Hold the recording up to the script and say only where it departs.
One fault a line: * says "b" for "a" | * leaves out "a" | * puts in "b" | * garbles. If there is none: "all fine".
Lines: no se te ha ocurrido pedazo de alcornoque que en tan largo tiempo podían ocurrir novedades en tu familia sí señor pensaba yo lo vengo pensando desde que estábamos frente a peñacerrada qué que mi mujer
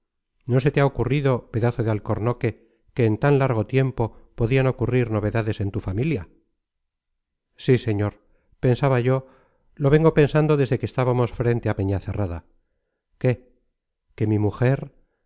all fine